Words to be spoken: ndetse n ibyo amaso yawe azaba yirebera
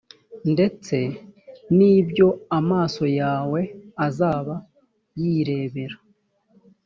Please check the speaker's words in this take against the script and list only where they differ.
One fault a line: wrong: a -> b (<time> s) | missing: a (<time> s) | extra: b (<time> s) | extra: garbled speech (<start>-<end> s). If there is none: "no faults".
no faults